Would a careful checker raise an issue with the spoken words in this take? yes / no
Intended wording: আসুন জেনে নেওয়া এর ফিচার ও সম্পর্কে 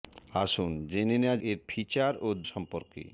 no